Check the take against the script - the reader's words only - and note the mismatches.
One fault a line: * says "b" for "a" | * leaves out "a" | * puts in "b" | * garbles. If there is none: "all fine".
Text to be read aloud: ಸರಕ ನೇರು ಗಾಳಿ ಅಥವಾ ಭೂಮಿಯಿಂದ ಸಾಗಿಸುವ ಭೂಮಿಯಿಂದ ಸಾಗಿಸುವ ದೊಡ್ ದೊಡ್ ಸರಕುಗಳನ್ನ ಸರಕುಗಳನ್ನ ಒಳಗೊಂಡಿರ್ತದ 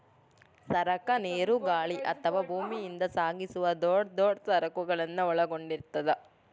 * leaves out "ಭೂಮಿಯಿಂದ ಸಾಗಿಸುವ"
* leaves out "ಸರಕುಗಳನ್ನ"